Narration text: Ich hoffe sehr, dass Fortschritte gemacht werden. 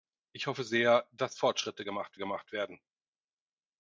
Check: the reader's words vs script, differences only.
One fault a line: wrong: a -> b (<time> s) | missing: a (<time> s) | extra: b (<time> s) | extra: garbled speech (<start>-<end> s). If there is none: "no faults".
extra: gemacht (2.2 s)